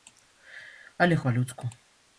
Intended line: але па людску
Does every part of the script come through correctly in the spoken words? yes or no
yes